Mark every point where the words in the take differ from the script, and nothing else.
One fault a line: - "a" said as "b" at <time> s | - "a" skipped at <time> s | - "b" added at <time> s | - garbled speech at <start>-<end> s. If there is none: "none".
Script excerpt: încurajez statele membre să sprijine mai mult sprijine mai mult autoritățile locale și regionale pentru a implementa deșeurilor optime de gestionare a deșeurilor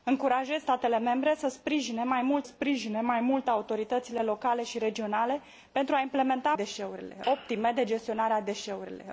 none